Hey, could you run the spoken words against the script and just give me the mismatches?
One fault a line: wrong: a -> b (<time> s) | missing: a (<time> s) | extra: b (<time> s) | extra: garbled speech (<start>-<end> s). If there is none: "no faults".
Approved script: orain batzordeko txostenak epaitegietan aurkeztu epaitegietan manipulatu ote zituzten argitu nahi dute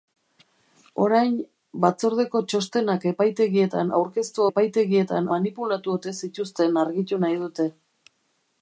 no faults